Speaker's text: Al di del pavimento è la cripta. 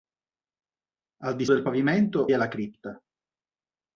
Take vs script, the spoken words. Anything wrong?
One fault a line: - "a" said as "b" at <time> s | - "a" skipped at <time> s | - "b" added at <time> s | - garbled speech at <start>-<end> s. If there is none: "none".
none